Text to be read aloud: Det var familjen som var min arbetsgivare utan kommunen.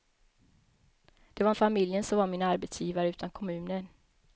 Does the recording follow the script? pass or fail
pass